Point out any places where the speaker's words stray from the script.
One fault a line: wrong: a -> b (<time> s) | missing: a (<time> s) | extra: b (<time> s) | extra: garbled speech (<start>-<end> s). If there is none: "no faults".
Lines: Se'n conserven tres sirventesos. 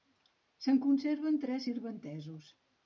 no faults